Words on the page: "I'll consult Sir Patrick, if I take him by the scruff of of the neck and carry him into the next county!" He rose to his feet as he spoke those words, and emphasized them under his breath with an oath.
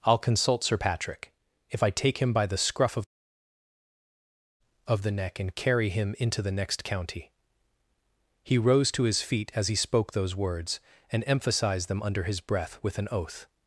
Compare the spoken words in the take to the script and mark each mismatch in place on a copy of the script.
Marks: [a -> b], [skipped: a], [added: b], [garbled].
"I'll consult Sir Patrick, if I take him by the scruff of of the neck and carry him into the next county!" He rose to his feet as he spoke those words, and emphasized them under his breath with an oath.